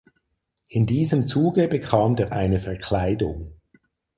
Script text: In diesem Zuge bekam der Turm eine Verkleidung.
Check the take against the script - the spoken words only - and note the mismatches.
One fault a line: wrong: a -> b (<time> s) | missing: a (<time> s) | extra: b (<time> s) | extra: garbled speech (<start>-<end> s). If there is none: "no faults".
missing: Turm (2.3 s)